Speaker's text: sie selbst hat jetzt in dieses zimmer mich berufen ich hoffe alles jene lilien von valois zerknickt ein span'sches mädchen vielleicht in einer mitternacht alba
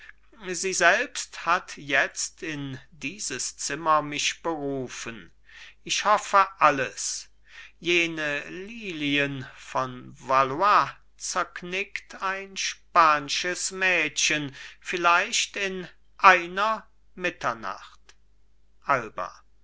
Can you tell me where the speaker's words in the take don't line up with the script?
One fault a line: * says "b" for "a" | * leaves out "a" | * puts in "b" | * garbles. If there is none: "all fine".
all fine